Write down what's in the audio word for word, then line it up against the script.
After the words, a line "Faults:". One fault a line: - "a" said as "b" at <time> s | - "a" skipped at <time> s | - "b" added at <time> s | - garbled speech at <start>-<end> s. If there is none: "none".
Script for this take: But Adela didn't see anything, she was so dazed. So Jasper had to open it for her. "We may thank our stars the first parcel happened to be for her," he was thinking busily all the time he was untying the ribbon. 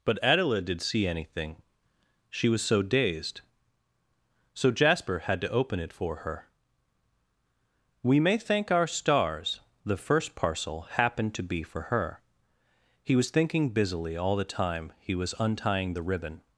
But Adela did see anything, she was so dazed. So Jasper had to open it for her. "We may thank our stars the first parcel happened to be for her," he was thinking busily all the time he was untying the ribbon.
Faults:
- "didn't" said as "did" at 0.6 s